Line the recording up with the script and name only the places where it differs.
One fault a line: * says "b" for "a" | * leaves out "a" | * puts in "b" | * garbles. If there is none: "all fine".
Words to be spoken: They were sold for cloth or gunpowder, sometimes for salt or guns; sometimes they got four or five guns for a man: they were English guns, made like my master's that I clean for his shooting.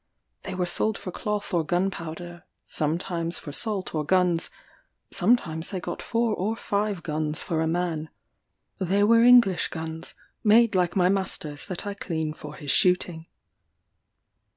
all fine